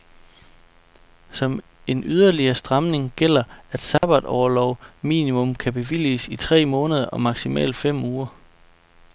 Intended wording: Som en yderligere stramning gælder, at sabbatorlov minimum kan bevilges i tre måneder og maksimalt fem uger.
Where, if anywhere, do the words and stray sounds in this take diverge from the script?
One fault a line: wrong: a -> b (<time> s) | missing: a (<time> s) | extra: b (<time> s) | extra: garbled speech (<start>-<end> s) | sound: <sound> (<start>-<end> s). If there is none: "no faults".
sound: dropout (4.0-4.0 s)